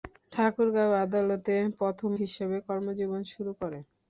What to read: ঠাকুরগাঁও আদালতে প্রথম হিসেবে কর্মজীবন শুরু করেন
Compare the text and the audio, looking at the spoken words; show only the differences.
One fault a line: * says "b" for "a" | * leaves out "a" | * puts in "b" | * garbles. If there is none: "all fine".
all fine